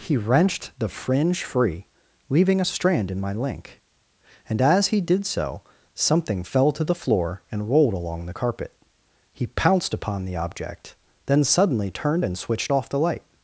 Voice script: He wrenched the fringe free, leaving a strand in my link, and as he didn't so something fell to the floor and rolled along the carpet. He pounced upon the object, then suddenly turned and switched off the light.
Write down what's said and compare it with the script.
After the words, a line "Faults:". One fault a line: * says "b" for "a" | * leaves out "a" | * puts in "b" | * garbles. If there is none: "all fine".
He wrenched the fringe free, leaving a strand in my link, and as he did so something fell to the floor and rolled along the carpet. He pounced upon the object, then suddenly turned and switched off the light.
Faults:
* says "did" for "didn't"